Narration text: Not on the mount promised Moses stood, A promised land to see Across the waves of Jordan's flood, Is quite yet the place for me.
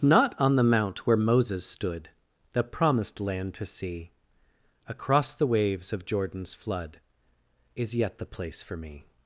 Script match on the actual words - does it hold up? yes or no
no